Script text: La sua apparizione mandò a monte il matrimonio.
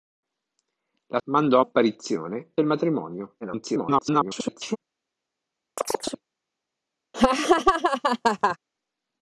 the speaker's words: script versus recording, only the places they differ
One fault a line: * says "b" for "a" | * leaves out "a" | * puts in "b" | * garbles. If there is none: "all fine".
* leaves out "sua apparizione"
* says "apparizione" for "monte"
* garbles